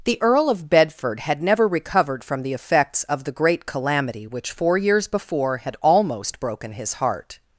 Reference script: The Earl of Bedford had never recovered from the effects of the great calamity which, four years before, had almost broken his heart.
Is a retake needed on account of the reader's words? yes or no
no